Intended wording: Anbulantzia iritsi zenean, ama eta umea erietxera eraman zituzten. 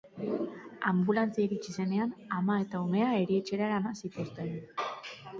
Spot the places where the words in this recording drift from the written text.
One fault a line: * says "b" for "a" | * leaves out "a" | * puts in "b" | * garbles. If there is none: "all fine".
all fine